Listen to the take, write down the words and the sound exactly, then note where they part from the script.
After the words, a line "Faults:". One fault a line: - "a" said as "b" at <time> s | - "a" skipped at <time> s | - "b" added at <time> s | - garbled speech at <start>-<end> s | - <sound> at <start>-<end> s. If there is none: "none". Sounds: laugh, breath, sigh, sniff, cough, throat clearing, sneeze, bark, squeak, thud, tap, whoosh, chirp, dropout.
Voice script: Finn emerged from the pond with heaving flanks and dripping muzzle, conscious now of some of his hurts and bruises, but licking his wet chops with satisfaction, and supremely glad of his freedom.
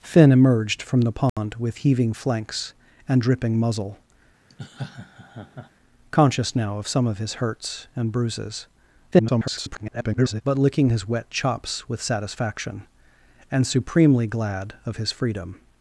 Finn emerged from the pond with heaving flanks and dripping muzzle, conscious now of some of his hurts and bruises, [garbled] but licking his wet chops with satisfaction, and supremely glad of his freedom.
Faults:
- dropout at 1.3-1.4 s
- laugh at 4.5-5.7 s
- garbled speech at 9.1-10.4 s